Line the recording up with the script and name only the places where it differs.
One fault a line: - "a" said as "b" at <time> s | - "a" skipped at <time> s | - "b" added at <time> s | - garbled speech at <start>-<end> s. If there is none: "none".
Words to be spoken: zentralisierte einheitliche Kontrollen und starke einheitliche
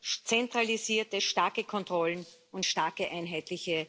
- "einheitliche" said as "starke" at 1.2 s